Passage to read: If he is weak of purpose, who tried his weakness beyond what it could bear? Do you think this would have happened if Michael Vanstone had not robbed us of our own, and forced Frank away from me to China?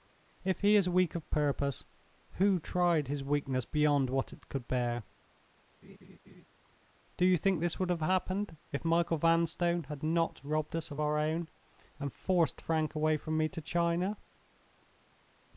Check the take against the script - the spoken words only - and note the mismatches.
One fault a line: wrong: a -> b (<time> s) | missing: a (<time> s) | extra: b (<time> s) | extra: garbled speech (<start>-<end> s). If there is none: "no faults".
no faults